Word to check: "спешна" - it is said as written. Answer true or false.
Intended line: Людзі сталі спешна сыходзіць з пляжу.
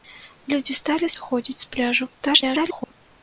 false